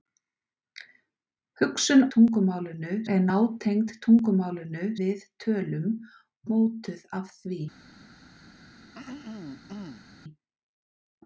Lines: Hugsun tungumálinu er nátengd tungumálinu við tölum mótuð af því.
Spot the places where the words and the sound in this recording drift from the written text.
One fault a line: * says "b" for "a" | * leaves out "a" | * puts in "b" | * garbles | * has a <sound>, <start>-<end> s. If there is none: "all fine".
* has a throat clearing, 8.9-10.1 s